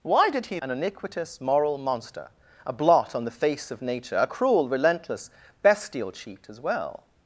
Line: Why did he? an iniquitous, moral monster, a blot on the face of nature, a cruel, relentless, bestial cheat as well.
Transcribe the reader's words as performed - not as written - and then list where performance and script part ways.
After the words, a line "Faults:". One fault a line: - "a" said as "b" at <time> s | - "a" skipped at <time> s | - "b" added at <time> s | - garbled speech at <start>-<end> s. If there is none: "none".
Why did he? an iniquitous, moral monster, a blot on the face of nature, a cruel, relentless, bestial cheat as well.
Faults:
none